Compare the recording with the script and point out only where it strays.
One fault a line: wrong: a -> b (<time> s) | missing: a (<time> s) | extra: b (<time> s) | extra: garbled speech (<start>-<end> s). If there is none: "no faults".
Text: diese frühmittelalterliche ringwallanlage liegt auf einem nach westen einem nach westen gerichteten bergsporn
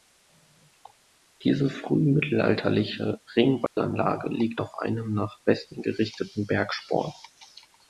missing: einem nach westen (5.8 s)